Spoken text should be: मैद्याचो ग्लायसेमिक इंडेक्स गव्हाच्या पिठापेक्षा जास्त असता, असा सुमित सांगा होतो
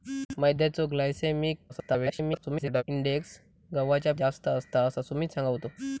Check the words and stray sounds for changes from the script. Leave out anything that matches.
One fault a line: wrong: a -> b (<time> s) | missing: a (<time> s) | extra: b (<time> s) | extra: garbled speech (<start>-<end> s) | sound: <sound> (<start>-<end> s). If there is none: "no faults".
extra: garbled speech (1.7-2.8 s)
missing: पिठापेक्षा (4.1 s)